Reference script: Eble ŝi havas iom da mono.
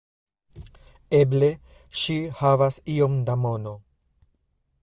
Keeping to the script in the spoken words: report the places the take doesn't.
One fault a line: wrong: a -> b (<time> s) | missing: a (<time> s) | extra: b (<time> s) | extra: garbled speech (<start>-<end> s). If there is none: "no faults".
no faults